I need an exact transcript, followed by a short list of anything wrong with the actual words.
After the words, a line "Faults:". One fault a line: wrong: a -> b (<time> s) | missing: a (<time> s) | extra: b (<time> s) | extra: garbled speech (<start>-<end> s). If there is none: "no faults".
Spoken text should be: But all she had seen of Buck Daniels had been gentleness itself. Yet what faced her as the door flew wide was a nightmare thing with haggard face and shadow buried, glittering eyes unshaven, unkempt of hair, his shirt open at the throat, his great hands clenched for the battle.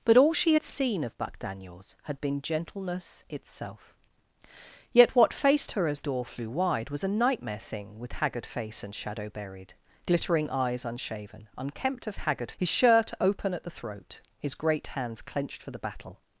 But all she had seen of Buck Daniels had been gentleness itself. Yet what faced her as door flew wide was a nightmare thing with haggard face and shadow buried, glittering eyes unshaven, unkempt of haggard, his shirt open at the throat, his great hands clenched for the battle.
Faults:
missing: the (6.0 s)
wrong: hair -> haggard (12.2 s)